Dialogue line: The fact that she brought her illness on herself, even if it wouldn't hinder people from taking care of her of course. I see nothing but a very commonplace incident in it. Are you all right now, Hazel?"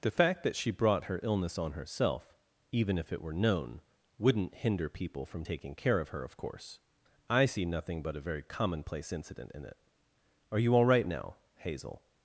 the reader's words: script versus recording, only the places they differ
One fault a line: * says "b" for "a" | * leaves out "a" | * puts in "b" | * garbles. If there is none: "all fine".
* puts in "were known"